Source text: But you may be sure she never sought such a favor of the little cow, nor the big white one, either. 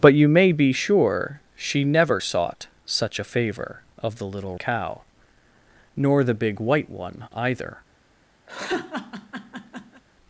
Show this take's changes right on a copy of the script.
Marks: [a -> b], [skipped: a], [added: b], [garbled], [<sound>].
But you may be sure she never sought such a favor of the little cow, nor the big white one, either. [laugh]